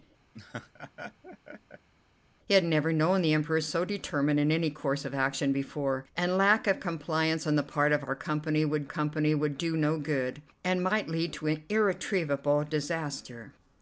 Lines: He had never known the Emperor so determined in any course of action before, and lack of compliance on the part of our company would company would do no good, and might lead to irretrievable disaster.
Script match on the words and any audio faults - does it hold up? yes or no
no